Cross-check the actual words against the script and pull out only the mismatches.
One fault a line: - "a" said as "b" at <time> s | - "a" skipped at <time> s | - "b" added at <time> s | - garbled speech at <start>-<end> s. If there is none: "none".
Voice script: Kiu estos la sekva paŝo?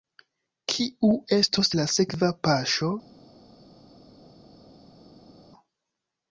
none